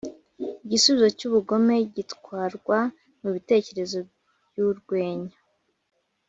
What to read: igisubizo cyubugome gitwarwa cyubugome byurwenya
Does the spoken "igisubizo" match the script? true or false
true